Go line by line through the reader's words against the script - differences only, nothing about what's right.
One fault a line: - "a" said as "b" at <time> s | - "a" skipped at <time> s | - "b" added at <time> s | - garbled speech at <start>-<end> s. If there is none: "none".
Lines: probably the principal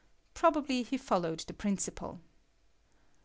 - "he followed" added at 0.8 s